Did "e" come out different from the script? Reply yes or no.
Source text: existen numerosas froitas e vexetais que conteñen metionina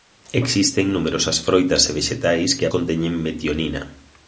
no